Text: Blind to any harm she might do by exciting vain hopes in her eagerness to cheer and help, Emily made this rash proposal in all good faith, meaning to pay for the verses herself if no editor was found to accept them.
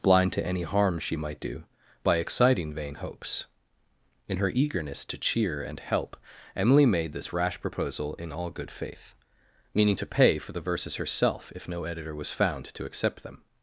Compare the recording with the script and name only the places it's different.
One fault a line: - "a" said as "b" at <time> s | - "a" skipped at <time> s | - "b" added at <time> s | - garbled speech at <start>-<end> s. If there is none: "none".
none